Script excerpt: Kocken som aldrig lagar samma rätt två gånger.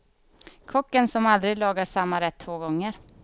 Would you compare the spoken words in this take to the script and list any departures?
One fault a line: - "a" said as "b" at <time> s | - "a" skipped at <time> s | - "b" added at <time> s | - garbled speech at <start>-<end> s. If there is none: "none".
none